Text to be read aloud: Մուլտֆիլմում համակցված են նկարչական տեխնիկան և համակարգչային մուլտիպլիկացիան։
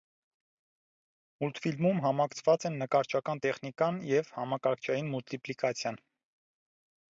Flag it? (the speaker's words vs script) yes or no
no